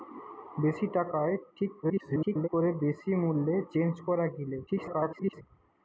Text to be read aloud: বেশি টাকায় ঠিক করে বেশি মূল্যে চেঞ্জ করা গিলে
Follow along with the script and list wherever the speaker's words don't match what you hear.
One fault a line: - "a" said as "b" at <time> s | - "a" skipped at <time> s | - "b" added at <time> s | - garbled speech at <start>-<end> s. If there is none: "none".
- garbled speech at 1.8-2.5 s
- garbled speech at 4.7-5.4 s